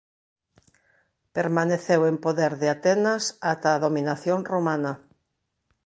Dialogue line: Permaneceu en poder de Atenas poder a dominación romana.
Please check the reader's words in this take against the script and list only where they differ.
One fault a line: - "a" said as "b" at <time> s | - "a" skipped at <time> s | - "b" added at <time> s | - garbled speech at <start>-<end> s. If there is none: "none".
- "poder" said as "ata" at 3.5 s